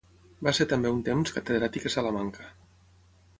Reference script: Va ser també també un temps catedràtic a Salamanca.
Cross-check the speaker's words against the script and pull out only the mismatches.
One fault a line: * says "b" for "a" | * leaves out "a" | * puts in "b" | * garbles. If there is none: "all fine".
* leaves out "també"